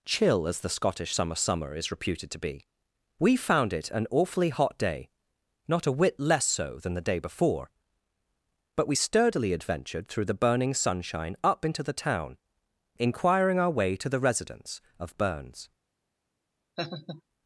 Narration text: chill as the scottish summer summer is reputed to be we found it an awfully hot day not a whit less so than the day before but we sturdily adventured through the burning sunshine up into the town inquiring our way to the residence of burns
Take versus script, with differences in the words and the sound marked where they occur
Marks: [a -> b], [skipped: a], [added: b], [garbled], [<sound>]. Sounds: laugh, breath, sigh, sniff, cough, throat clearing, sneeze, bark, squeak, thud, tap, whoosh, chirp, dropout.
chill as the scottish summer summer is reputed to be we found it an awfully hot day not a whit less so than the day before but we sturdily adventured through the burning sunshine up into the town inquiring our way to the residence of burns [laugh]